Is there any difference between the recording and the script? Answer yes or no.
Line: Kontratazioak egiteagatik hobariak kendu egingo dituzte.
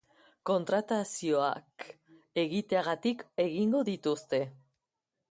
yes